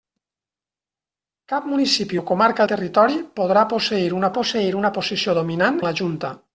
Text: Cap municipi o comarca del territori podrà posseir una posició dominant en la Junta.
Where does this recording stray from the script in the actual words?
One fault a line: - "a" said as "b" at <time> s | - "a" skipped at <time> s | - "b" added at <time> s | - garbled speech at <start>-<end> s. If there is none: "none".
- "del" skipped at 2.7 s
- "posseir una" added at 4.4 s
- "en" skipped at 5.8 s